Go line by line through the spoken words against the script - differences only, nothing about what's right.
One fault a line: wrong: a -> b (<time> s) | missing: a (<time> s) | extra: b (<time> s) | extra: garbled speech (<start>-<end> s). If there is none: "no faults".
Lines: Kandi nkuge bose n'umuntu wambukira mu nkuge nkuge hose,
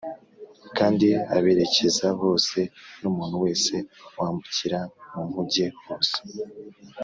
wrong: nkuge -> aberekeza (1.4 s)
extra: wese (3.5 s)
missing: nkuge (5.7 s)